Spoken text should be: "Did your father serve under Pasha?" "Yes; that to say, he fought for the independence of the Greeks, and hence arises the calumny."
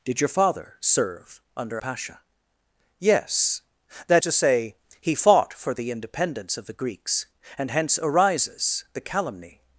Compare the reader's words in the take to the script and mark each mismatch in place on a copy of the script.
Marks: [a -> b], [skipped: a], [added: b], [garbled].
"Did your father serve under Pasha?" "Yes; that to say, he fought for the independence of the Greeks, and hence arises the calumny."